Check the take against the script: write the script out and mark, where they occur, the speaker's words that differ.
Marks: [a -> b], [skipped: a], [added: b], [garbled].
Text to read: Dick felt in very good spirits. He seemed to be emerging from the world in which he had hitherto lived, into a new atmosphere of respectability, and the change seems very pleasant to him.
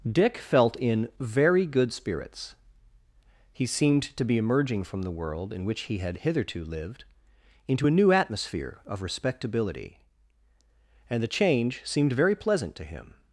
Dick felt in very good spirits. He seemed to be emerging from the world in which he had hitherto lived, into a new atmosphere of respectability, and the change [seems -> seemed] very pleasant to him.